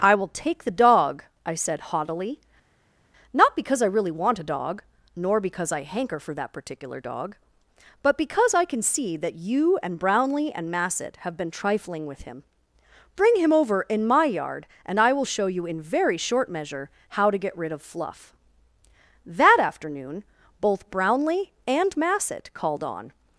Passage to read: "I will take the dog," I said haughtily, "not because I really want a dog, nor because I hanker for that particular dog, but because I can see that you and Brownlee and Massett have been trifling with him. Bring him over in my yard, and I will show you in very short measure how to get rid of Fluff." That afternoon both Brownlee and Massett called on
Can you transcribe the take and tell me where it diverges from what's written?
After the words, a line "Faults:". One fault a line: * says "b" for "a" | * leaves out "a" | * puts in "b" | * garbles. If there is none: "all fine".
"I will take the dog," I said haughtily, "not because I really want a dog, nor because I hanker for that particular dog, but because I can see that you and Brownlee and Massett have been trifling with him. Bring him over in my yard, and I will show you in very short measure how to get rid of Fluff." That afternoon both Brownlee and Massett called on
Faults:
all fine